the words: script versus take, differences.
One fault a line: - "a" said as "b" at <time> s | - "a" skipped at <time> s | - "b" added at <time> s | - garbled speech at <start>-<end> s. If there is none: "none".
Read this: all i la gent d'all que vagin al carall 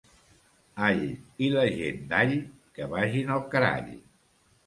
none